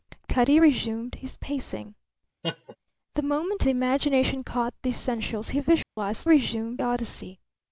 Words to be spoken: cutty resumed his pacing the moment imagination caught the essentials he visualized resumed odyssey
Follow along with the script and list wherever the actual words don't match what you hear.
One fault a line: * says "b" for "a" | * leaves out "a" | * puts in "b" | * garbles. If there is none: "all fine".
all fine